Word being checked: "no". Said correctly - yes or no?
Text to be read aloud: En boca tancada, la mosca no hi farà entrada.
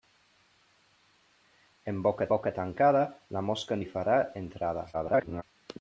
no